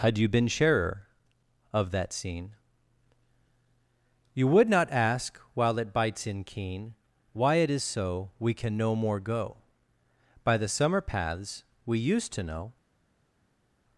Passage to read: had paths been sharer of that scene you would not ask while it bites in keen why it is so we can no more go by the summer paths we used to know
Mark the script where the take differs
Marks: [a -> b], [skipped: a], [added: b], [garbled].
had [paths -> you] been sharer of that scene you would not ask while it bites in keen why it is so we can no more go by the summer paths we used to know